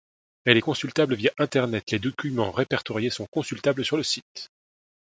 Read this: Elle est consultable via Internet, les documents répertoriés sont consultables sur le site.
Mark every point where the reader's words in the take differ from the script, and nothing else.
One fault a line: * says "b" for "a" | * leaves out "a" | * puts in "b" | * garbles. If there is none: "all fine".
all fine